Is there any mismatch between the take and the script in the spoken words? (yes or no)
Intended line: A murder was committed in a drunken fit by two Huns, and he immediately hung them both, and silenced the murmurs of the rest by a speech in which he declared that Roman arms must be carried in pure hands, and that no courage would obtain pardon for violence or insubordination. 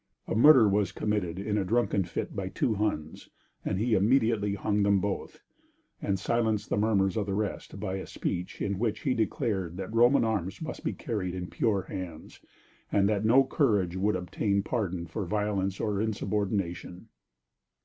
no